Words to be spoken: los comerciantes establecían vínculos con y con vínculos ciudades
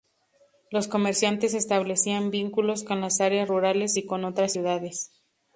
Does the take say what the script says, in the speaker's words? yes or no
no